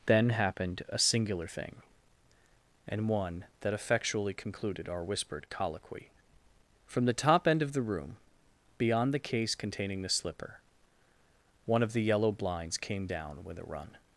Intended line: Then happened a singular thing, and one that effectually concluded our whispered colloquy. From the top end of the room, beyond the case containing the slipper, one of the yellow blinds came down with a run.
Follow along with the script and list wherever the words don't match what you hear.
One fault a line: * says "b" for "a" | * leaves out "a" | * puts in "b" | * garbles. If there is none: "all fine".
all fine